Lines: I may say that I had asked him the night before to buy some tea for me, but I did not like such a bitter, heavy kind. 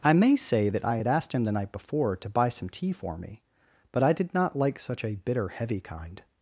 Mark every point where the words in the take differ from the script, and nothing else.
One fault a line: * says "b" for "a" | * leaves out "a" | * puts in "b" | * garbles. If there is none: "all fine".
all fine